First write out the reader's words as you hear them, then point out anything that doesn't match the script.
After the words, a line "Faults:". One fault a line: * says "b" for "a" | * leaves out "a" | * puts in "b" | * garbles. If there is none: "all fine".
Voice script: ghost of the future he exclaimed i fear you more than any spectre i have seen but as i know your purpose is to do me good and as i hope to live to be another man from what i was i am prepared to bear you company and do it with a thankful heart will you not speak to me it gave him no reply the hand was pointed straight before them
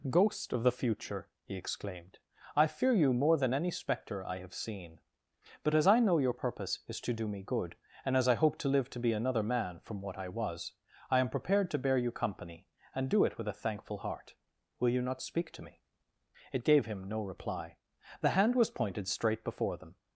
ghost of the future he exclaimed i fear you more than any spectre i have seen but as i know your purpose is to do me good and as i hope to live to be another man from what i was i am prepared to bear you company and do it with a thankful heart will you not speak to me it gave him no reply the hand was pointed straight before them
Faults:
all fine